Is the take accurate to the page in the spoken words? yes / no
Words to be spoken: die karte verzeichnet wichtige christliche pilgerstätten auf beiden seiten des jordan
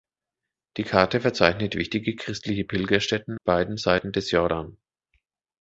no